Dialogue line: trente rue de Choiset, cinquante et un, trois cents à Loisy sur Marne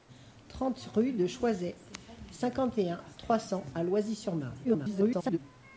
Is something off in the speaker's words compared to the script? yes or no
yes